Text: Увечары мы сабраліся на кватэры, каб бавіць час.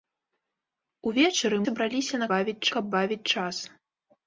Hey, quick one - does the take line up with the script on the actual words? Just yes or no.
no